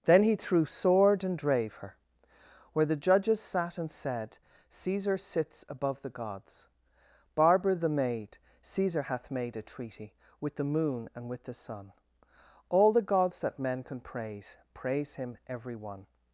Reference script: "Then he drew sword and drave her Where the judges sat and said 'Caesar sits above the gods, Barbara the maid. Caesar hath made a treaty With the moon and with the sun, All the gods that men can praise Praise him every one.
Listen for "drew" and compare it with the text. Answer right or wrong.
wrong